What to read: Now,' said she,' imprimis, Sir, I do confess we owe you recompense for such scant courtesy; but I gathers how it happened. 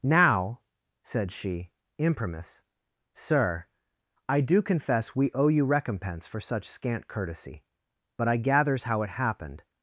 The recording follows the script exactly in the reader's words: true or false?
true